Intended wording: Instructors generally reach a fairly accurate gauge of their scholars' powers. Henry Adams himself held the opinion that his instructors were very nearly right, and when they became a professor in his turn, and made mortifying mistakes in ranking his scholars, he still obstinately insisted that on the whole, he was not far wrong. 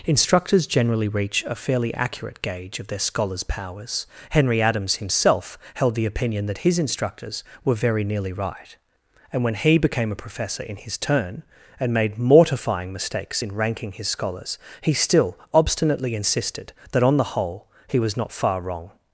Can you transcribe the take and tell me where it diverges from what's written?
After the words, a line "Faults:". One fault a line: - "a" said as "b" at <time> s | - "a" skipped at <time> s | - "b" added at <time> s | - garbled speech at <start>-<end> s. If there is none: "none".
Instructors generally reach a fairly accurate gauge of their scholars' powers. Henry Adams himself held the opinion that his instructors were very nearly right, and when he became a professor in his turn, and made mortifying mistakes in ranking his scholars, he still obstinately insisted that on the whole, he was not far wrong.
Faults:
- "they" said as "he" at 9.5 s